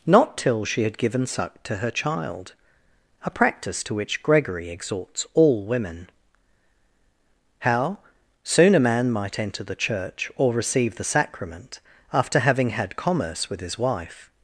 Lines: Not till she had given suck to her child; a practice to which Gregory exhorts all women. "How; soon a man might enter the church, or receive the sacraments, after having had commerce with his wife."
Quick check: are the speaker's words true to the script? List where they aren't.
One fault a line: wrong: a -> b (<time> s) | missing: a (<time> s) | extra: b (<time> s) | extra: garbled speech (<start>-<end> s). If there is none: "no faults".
wrong: sacraments -> sacrament (11.0 s)